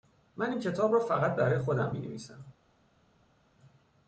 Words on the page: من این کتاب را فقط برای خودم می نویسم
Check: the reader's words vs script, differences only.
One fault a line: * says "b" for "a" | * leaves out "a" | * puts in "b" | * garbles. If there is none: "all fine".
all fine